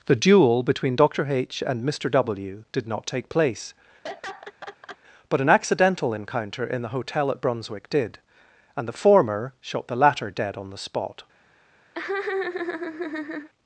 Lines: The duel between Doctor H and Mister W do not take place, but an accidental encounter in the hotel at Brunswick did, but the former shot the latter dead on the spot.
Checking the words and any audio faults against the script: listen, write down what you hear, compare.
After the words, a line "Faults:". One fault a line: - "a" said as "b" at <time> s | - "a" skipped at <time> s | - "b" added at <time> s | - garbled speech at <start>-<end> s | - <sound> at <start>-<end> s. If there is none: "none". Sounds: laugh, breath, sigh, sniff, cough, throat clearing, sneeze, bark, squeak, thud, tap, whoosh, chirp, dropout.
The duel between Doctor H and Mister W did not take place, but an accidental encounter in the hotel at Brunswick did, and the former shot the latter dead on the spot.
Faults:
- "do" said as "did" at 2.7 s
- laugh at 4.0-5.0 s
- "but" said as "and" at 8.8 s
- laugh at 11.9-13.5 s